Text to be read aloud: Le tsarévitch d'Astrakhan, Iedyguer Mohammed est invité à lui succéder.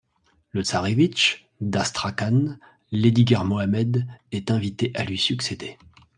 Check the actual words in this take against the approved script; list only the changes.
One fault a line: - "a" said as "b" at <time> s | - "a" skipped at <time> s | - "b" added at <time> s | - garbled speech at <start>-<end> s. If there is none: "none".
none